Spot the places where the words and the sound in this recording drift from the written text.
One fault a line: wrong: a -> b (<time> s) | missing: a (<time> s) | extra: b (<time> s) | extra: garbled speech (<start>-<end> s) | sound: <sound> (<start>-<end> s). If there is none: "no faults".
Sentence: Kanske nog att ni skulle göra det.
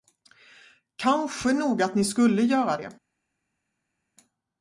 no faults